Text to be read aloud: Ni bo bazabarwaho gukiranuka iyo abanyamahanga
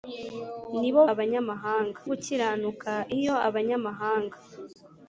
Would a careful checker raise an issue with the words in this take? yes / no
yes